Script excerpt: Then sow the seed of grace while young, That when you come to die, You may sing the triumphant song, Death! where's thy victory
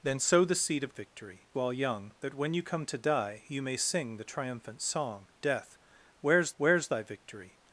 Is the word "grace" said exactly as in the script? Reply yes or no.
no